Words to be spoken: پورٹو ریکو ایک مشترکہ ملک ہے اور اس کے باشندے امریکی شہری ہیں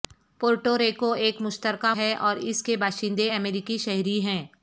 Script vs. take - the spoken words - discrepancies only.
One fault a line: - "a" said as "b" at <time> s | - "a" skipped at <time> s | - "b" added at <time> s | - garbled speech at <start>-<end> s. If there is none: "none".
- "ملک" skipped at 1.9 s